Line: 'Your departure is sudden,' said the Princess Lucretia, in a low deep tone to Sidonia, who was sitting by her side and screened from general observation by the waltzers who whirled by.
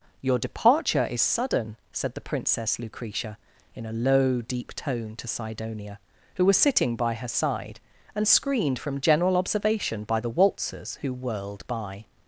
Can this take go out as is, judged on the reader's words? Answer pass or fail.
pass